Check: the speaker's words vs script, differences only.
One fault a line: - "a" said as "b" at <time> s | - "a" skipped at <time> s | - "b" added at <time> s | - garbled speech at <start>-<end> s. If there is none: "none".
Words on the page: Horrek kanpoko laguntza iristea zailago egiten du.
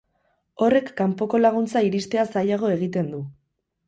none